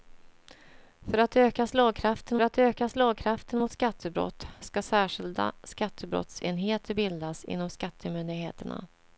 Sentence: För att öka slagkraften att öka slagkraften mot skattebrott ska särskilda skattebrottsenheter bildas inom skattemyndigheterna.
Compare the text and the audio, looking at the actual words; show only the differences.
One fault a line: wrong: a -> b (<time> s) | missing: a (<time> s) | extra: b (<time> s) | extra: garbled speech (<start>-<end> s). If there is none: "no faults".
no faults